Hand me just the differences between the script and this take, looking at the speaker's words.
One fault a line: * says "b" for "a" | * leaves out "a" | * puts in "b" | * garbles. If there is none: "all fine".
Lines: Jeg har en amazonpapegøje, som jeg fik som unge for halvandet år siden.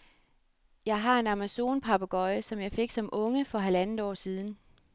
all fine